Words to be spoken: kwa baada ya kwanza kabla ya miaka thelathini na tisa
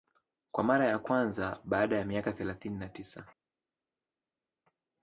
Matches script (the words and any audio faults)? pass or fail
fail